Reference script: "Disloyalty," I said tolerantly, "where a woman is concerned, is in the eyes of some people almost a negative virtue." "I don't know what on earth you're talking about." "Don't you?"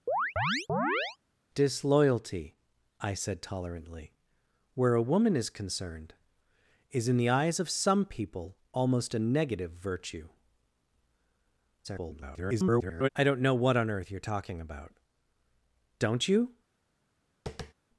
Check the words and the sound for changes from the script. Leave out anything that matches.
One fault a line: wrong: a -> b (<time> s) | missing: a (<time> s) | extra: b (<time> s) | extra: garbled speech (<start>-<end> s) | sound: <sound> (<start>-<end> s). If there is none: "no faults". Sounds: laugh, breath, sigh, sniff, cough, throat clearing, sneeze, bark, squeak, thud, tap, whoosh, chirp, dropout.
sound: chirp (0.1-1.2 s)
extra: garbled speech (11.8-13.1 s)
sound: tap (17.5-17.7 s)